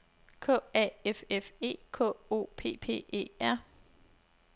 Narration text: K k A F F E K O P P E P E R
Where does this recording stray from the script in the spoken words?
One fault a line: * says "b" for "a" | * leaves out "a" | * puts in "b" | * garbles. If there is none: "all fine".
* leaves out "k"
* leaves out "P E"